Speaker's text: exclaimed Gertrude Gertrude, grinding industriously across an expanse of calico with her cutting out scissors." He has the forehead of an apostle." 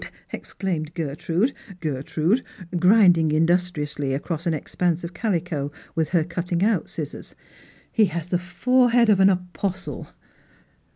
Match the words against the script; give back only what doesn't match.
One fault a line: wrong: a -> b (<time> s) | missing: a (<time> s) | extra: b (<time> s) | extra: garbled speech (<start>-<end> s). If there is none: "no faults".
no faults